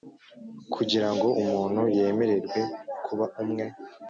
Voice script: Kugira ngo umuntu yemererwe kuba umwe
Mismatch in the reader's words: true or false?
false